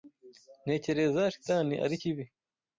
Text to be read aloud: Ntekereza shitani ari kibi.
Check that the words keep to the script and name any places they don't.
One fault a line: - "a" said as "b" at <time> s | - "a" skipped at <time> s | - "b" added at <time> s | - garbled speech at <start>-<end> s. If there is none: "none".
none